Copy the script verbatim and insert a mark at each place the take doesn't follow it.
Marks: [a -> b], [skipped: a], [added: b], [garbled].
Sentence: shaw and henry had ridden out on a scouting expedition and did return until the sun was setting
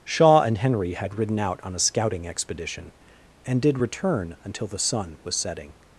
shaw and henry had ridden out on a scouting expedition and did return until the sun was setting